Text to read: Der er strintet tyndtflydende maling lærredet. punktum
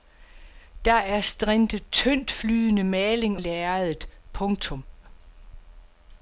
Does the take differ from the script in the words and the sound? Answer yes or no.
no